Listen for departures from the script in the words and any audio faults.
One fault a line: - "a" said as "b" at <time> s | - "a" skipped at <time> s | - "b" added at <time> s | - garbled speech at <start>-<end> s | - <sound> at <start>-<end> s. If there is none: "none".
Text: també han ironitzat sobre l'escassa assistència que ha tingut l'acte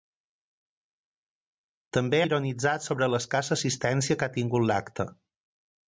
- "han" skipped at 2.2 s